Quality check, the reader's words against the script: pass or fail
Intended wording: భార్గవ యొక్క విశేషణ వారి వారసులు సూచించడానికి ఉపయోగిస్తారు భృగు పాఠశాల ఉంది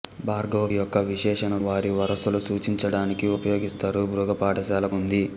pass